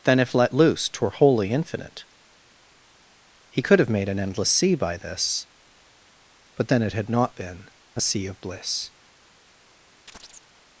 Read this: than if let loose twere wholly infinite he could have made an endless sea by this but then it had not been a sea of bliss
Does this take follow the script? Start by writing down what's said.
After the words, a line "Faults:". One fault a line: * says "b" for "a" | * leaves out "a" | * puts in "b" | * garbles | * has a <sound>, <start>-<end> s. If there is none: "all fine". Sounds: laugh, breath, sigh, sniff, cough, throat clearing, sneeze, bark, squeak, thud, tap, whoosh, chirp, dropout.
than if let loose twere wholly infinite he could have made an endless sea by this but then it had not been a sea of bliss
Faults:
* has a chirp, 10.1-10.5 s